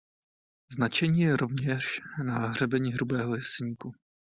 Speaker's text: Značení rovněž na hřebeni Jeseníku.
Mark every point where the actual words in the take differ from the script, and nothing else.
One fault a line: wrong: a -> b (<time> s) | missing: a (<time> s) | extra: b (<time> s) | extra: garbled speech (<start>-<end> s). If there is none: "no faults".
extra: je (1.2 s)
extra: Hrubého (2.9 s)